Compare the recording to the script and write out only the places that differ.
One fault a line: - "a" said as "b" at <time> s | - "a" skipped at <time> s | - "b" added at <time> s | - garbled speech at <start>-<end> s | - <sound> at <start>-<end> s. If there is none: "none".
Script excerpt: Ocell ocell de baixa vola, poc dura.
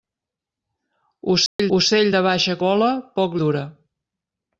- dropout at 1.5-1.6 s